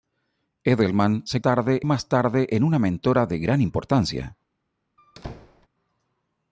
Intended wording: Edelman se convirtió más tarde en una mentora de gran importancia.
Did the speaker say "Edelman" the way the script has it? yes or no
yes